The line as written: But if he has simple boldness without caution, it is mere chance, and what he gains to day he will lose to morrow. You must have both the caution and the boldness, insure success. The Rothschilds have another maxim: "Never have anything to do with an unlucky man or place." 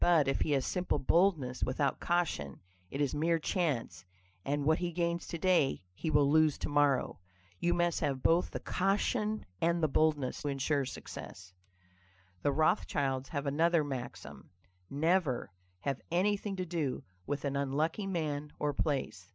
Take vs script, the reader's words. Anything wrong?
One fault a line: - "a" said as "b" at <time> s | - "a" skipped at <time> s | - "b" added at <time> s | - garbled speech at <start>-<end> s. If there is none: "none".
none